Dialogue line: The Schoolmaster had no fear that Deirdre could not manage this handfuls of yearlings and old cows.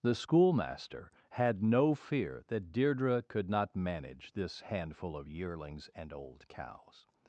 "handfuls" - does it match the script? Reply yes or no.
no